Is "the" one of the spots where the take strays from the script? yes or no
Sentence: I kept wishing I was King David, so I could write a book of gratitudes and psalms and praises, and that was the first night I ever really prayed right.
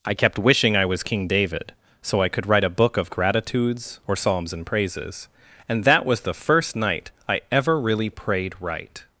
no